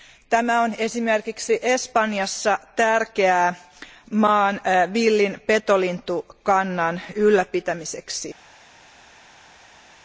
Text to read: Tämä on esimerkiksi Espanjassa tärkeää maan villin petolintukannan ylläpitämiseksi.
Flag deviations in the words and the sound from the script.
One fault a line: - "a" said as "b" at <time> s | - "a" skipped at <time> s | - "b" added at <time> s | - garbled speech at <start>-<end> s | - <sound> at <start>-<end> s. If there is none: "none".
none